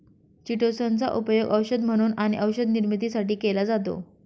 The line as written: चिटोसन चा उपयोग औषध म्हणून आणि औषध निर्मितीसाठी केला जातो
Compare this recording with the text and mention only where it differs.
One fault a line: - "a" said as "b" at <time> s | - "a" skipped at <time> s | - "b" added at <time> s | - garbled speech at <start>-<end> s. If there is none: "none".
none